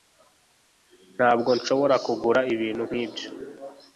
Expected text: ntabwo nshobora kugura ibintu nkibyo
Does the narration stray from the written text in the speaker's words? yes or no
no